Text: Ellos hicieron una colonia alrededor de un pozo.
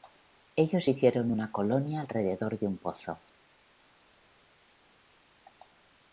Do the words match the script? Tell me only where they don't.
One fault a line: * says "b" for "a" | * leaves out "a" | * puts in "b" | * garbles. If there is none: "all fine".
all fine